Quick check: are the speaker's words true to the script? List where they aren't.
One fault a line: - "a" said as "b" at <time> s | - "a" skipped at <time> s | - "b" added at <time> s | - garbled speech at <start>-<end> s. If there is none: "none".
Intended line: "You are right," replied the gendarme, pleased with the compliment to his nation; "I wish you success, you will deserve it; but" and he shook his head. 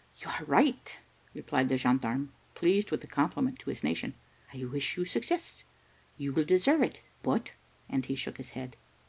none